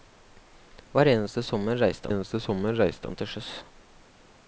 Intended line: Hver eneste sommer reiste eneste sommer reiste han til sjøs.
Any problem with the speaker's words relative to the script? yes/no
no